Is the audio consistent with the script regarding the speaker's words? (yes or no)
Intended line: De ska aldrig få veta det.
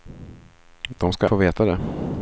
no